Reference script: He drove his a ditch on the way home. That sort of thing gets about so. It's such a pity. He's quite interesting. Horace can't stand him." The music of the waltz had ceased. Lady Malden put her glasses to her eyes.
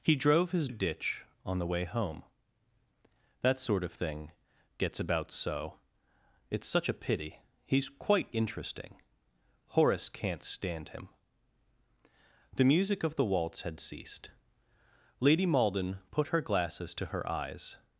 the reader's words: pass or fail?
pass